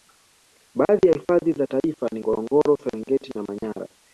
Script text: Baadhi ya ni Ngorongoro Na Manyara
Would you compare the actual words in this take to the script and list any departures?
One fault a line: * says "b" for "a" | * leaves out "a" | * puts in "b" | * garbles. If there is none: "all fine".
* puts in "hifadhi za taifa"
* puts in "Serengeti"